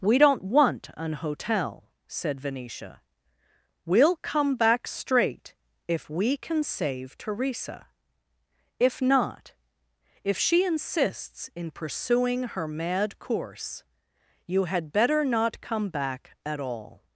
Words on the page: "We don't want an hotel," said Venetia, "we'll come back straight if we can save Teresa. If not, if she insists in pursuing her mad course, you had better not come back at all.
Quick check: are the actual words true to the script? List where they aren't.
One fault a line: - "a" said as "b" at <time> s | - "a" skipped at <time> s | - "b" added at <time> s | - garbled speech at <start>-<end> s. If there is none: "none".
none